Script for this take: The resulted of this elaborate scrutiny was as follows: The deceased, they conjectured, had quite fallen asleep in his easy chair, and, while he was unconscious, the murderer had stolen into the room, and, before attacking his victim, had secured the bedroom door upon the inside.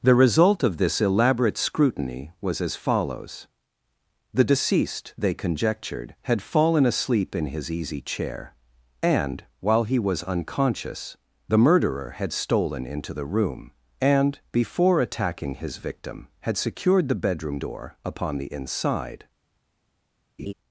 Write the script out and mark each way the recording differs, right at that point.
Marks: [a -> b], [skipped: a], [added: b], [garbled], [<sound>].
The [resulted -> result] of this elaborate scrutiny was as follows: The deceased, they conjectured, had [skipped: quite] fallen asleep in his easy chair, and, while he was unconscious, the murderer had stolen into the room, and, before attacking his victim, had secured the bedroom door upon the inside. [laugh]